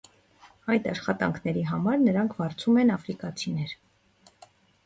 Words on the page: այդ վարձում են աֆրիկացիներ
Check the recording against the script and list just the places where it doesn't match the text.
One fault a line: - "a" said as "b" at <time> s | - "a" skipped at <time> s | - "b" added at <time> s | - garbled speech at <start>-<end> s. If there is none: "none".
- "աշխատանքների համար նրանք" added at 0.9 s